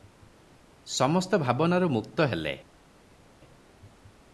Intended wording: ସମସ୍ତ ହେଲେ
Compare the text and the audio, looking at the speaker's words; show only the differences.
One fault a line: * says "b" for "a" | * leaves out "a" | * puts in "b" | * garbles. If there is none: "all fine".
* puts in "ଭାବନାରୁ ମୁକ୍ତ"